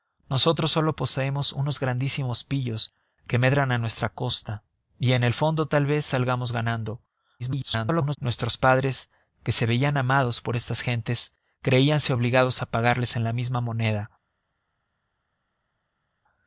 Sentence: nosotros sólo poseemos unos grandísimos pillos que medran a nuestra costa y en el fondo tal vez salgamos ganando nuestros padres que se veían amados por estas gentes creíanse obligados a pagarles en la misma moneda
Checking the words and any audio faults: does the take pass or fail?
fail